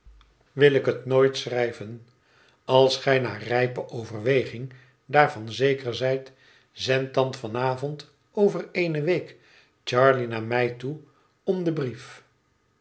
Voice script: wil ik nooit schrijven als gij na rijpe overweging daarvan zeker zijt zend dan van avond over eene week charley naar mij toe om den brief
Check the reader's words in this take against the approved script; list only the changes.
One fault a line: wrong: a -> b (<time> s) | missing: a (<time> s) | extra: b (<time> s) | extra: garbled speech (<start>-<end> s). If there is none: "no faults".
extra: het (0.8 s)